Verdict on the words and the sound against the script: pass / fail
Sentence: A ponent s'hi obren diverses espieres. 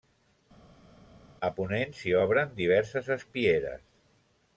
pass